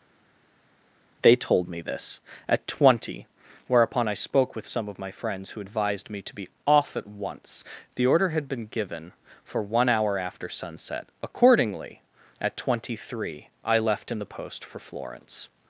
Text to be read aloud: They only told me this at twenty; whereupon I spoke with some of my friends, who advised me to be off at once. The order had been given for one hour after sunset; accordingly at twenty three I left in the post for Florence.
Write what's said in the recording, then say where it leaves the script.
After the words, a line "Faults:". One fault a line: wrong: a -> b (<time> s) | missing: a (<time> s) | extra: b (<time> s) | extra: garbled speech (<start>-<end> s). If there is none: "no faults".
They told me this at twenty; whereupon I spoke with some of my friends, who advised me to be off at once. The order had been given for one hour after sunset; accordingly at twenty three I left in the post for Florence.
Faults:
missing: only (1.3 s)